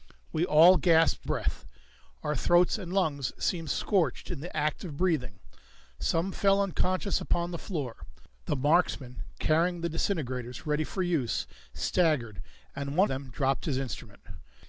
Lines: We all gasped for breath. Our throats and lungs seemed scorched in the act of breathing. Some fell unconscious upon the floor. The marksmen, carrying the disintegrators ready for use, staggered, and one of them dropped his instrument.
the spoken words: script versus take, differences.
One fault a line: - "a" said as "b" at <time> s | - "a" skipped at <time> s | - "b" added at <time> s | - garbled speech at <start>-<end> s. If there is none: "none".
- "for" skipped at 1.2 s
- "of" skipped at 13.1 s